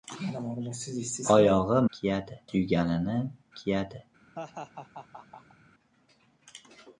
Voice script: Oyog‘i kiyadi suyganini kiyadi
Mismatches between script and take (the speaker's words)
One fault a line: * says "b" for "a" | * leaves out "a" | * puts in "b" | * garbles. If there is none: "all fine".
all fine